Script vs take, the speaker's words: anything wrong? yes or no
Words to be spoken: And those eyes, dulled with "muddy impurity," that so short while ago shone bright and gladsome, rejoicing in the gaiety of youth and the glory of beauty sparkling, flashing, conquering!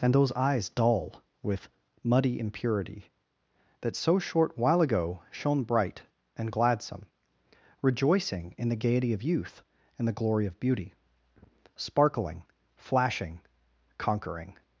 yes